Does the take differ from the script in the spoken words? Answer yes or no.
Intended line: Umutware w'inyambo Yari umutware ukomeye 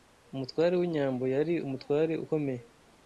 no